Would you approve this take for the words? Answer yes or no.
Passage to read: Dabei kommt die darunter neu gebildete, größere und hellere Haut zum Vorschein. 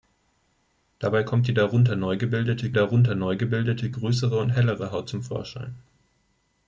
no